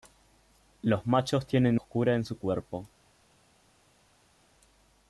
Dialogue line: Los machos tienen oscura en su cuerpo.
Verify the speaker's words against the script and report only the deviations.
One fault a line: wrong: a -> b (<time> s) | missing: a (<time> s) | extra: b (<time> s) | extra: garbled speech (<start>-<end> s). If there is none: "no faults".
no faults